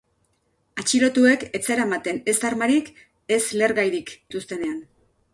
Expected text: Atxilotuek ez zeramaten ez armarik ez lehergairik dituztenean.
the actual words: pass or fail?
pass